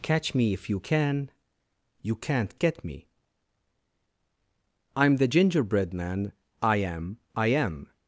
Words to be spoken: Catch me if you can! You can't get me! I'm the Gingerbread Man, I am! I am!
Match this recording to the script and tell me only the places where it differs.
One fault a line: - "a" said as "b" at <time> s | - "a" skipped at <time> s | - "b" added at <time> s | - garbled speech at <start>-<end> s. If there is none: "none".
none